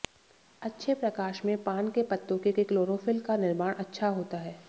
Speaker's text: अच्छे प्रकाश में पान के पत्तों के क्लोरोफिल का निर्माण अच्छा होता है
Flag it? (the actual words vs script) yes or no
yes